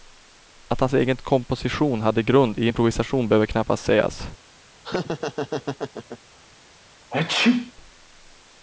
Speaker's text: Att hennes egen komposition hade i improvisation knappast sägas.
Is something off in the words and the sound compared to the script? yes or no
yes